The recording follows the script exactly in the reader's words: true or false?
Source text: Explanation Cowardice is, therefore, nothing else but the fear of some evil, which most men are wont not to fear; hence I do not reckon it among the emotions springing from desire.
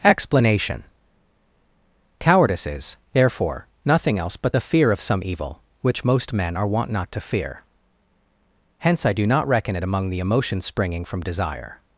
true